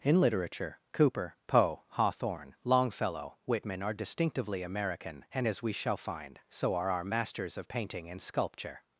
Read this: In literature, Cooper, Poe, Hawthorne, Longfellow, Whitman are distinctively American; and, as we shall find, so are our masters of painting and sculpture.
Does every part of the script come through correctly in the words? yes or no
yes